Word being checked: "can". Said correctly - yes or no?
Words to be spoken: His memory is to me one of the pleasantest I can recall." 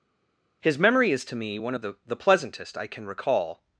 yes